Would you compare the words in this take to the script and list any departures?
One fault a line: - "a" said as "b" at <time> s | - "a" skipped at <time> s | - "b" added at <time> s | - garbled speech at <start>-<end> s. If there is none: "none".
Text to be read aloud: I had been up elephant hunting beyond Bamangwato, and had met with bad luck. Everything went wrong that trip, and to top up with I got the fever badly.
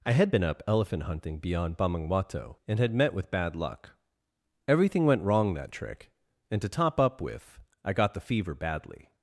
- "trip" said as "trick" at 5.7 s